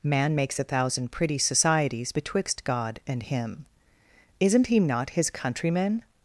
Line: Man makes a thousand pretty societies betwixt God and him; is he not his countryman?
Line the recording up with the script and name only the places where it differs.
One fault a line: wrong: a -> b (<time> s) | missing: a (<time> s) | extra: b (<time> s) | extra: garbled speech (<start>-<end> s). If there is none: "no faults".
wrong: is -> isn't (4.4 s)